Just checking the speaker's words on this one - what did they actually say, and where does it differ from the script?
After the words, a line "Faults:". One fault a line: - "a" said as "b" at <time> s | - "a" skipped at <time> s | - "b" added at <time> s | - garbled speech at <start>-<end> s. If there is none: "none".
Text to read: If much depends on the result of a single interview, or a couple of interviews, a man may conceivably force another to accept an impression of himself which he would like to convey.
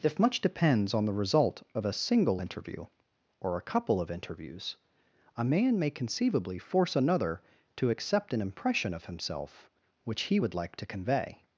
If much depends on the result of a single interview, or a couple of interviews, a man may conceivably force another to accept an impression of himself which he would like to convey.
Faults:
none